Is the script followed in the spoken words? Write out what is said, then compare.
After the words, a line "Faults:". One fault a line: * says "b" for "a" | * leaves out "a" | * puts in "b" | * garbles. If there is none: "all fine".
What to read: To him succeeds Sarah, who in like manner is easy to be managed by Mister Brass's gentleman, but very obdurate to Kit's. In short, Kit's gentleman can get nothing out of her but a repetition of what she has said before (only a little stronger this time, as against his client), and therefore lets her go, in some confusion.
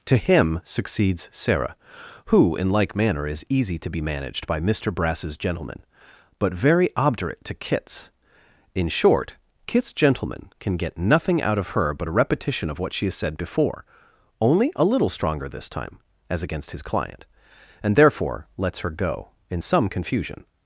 To him succeeds Sarah, who in like manner is easy to be managed by Mister Brass's gentleman, but very obdurate to Kit's. In short, Kit's gentleman can get nothing out of her but a repetition of what she has said before (only a little stronger this time, as against his client), and therefore lets her go, in some confusion.
Faults:
all fine